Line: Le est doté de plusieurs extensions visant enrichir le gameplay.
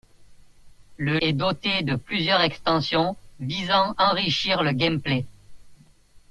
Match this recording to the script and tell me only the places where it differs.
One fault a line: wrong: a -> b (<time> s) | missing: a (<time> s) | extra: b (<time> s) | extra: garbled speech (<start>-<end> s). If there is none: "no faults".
no faults